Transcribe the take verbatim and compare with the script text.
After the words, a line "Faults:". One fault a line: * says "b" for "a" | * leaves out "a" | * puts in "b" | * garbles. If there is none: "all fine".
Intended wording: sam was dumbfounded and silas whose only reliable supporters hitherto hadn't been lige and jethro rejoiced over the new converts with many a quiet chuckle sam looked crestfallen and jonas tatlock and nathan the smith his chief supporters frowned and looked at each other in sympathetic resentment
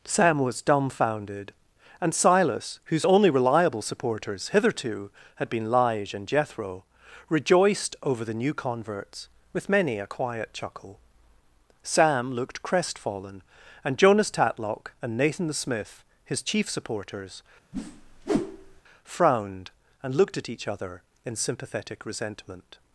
sam was dumbfounded and silas whose only reliable supporters hitherto had been lige and jethro rejoiced over the new converts with many a quiet chuckle sam looked crestfallen and jonas tatlock and nathan the smith his chief supporters frowned and looked at each other in sympathetic resentment
Faults:
* says "had" for "hadn't"